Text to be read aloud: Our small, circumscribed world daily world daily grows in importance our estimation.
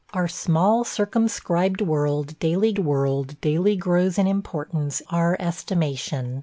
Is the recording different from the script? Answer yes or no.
no